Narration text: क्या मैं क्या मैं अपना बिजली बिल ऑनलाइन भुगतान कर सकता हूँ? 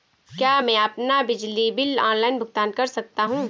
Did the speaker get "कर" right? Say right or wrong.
right